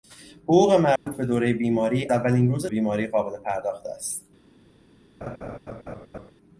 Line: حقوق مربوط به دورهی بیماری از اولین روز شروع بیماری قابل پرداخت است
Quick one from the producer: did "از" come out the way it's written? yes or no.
no